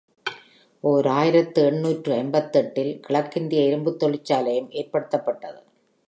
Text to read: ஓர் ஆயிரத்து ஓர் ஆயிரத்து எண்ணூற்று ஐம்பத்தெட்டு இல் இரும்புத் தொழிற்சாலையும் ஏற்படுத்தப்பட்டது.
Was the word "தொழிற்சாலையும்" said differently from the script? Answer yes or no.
no